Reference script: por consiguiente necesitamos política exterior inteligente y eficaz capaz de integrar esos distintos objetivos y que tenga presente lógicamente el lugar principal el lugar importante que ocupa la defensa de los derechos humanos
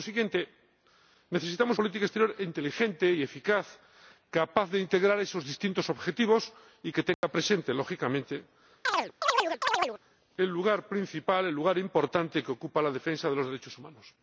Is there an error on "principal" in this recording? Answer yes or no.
no